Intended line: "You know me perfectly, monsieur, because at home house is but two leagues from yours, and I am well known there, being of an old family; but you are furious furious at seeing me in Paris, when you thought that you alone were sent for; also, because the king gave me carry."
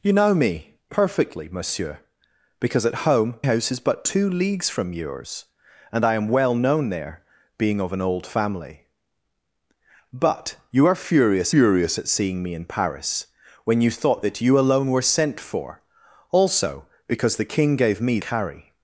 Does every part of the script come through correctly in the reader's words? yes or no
yes